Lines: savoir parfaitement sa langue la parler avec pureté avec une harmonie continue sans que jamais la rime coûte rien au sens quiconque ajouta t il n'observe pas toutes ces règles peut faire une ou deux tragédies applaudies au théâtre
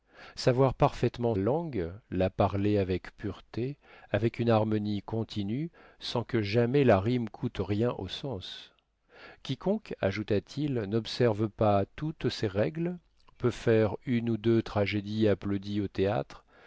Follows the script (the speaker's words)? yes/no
no